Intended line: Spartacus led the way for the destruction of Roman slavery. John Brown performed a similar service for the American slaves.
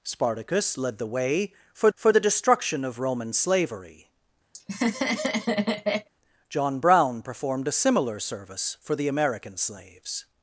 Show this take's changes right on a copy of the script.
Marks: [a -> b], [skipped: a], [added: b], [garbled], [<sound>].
Spartacus led the way for [added: for] the destruction of Roman slavery. [laugh] John Brown performed a similar service for the American slaves.